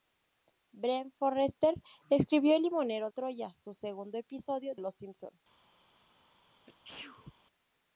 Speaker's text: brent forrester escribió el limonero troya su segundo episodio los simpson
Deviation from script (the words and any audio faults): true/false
true